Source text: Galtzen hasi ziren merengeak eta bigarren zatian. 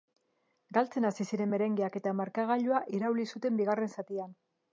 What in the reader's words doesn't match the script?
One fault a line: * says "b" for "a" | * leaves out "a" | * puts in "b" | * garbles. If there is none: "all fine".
* puts in "markagailua irauli zuten"